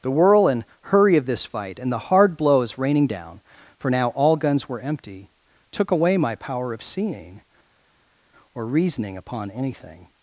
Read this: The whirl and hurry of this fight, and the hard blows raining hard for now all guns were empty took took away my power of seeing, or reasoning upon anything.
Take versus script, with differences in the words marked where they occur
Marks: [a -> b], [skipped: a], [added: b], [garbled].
The whirl and hurry of this fight, and the hard blows raining [hard -> down] for now all guns were empty took [skipped: took] away my power of seeing, or reasoning upon anything.